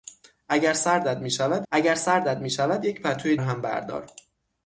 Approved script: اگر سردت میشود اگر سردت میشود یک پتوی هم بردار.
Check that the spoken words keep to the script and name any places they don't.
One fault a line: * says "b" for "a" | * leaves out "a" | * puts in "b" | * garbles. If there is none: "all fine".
all fine